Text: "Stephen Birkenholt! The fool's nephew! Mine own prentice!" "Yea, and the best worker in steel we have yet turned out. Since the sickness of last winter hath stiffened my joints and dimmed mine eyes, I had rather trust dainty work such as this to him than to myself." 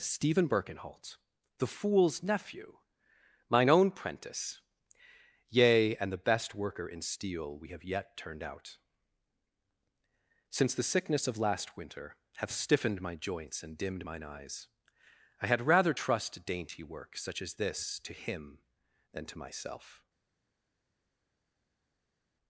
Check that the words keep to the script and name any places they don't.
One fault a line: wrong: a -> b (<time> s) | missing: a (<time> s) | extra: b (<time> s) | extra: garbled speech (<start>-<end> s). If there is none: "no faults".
no faults